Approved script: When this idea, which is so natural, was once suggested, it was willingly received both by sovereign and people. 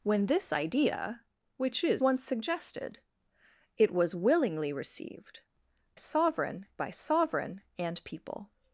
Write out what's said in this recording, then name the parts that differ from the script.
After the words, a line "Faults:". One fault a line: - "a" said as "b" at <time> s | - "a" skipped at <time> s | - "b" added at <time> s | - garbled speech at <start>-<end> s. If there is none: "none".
When this idea, which is once suggested, it was willingly received sovereign by sovereign and people.
Faults:
- "so natural was" skipped at 2.0 s
- "both" said as "sovereign" at 5.9 s